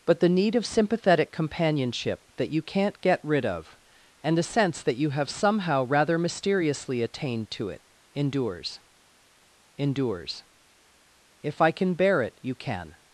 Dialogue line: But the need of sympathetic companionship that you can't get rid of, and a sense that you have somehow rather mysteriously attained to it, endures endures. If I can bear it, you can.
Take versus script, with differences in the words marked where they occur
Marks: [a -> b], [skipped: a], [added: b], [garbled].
But the need of sympathetic companionship that you can't get rid of, and a sense that you have somehow rather mysteriously attained to it, endures endures. If I can bear it, you can.